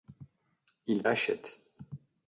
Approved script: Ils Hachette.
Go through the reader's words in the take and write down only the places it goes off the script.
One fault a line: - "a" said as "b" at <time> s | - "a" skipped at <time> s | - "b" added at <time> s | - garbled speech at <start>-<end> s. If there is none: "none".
none